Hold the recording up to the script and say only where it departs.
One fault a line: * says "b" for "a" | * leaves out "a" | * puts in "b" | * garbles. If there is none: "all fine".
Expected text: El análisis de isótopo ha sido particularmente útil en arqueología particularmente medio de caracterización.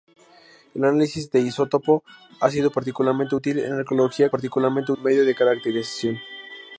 all fine